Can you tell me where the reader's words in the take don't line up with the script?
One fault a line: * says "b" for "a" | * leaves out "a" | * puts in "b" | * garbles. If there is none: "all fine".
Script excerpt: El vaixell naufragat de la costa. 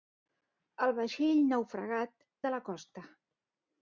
all fine